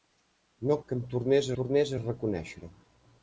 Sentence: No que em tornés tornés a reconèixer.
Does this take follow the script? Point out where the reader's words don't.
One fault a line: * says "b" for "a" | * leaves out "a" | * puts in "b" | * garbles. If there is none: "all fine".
all fine